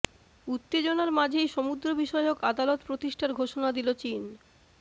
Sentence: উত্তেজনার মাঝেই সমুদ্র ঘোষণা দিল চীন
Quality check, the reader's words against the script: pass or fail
fail